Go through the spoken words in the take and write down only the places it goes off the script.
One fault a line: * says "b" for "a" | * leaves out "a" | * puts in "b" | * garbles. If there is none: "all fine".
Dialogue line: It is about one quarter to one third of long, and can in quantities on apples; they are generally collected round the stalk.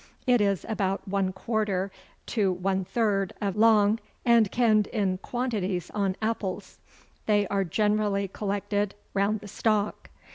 all fine